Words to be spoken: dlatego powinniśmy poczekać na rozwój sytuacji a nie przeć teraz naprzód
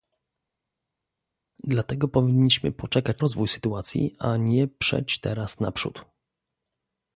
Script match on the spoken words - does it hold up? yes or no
no